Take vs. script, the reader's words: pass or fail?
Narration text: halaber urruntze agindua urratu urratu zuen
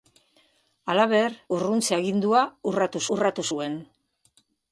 pass